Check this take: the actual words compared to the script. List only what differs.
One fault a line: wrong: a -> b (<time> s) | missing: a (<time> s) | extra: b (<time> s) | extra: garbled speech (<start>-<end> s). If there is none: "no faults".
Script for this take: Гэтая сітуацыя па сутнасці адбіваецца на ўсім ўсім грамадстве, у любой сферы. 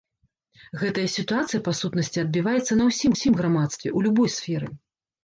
no faults